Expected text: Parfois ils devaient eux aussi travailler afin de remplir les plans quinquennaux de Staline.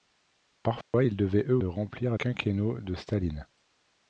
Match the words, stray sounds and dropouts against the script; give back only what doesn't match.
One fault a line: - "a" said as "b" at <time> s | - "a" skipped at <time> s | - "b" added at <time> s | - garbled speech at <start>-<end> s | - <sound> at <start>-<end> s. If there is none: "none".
- dropout at 0.8-0.9 s
- "aussi travailler afin" skipped at 1.6 s
- "les plans" skipped at 2.2 s